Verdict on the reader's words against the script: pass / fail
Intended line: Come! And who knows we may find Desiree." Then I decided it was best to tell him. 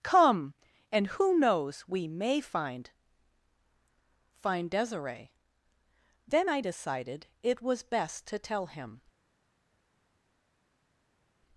fail